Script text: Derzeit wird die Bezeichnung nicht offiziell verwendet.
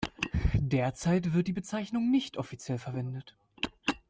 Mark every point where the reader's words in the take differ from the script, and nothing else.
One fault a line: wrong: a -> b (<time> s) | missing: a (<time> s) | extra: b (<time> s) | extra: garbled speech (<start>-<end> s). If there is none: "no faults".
no faults